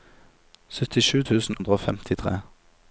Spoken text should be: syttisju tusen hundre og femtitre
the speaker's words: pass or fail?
pass